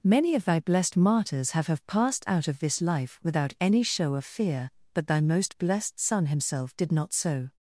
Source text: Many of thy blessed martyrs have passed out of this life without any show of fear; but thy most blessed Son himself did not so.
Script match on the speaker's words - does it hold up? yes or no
no